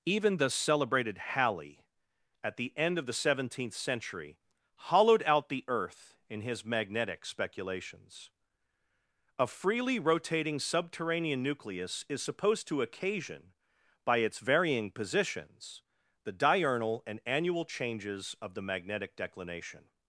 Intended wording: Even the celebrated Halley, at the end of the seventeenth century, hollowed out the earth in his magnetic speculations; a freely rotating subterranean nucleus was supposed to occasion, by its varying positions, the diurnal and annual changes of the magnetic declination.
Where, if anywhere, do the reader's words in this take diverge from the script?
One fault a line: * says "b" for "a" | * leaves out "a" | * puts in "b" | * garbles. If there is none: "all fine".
* says "is" for "was"